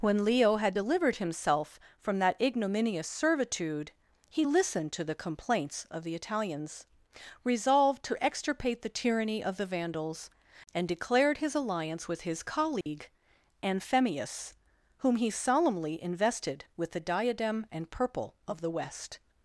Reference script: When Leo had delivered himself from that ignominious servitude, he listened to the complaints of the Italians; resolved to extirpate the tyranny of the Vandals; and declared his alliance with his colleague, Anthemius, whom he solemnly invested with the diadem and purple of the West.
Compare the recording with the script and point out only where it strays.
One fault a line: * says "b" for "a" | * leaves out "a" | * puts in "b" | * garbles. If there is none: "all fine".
all fine